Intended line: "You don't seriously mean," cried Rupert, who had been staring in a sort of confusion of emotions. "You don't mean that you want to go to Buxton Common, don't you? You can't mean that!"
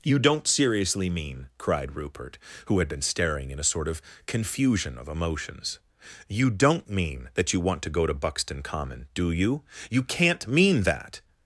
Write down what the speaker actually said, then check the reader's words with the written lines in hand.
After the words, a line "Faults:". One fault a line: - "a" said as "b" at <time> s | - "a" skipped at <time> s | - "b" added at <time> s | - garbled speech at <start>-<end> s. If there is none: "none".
"You don't seriously mean," cried Rupert, who had been staring in a sort of confusion of emotions. "You don't mean that you want to go to Buxton Common, do you? You can't mean that!"
Faults:
- "don't" said as "do" at 9.1 s